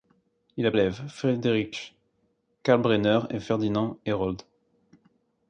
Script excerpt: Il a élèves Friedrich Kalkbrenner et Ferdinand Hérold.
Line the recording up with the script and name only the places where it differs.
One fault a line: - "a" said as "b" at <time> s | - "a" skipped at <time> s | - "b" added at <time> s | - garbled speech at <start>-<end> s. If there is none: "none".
none